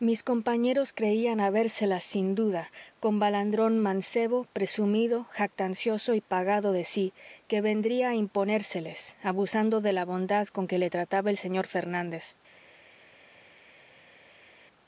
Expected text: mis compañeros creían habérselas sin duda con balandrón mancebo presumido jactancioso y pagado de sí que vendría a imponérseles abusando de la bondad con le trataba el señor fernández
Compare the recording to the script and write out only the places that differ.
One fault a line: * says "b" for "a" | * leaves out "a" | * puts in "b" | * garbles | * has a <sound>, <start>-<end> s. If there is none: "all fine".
* puts in "que"